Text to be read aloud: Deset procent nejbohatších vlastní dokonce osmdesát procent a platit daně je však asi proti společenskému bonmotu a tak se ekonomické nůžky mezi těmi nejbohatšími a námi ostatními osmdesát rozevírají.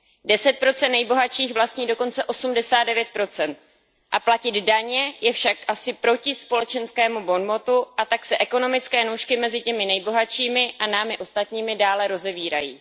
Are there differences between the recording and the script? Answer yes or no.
yes